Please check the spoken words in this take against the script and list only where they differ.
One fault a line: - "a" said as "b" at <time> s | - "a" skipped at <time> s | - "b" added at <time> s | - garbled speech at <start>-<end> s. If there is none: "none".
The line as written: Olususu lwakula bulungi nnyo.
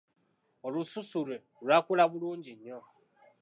- "lwe" added at 1.2 s